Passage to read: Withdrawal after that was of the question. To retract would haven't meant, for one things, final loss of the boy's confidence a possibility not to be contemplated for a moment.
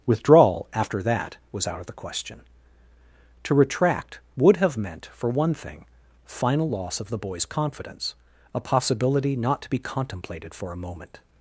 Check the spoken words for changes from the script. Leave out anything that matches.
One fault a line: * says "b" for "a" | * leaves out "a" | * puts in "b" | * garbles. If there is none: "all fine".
* puts in "out"
* says "have" for "haven't"
* says "thing" for "things"